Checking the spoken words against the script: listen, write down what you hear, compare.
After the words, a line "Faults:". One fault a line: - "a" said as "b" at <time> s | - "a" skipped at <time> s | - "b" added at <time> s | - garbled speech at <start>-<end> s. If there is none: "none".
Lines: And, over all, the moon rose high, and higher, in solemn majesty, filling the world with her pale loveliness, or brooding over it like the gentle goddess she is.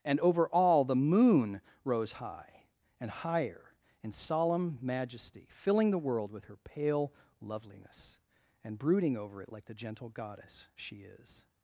And, over all, the moon rose high, and higher, in solemn majesty, filling the world with her pale loveliness, and brooding over it like the gentle goddess she is.
Faults:
- "or" said as "and" at 8.6 s